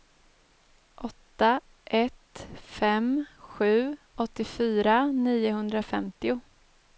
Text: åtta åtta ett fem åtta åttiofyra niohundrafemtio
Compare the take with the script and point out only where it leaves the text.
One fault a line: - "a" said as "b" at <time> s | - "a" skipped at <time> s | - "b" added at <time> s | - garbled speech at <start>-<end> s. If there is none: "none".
- "åtta" skipped at 1.6 s
- "åtta" said as "sju" at 3.4 s